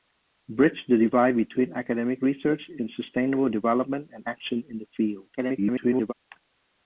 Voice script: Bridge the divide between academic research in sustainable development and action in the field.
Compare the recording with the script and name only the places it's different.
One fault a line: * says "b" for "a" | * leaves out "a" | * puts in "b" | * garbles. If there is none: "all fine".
* garbles